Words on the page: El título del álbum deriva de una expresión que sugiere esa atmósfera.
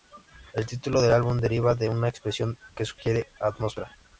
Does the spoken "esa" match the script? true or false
false